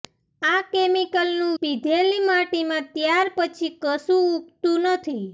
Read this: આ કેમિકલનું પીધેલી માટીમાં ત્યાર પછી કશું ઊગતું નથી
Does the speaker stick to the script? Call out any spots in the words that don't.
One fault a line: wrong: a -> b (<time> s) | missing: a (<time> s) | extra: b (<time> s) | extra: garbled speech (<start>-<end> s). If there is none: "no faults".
no faults